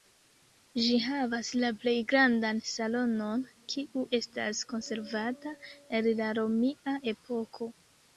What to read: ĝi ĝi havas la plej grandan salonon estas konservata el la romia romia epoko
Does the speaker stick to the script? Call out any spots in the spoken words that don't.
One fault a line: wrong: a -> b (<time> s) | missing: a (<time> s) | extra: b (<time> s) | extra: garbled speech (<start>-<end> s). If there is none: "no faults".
missing: ĝi (0.9 s)
extra: kiu (3.7 s)
missing: romia (7.0 s)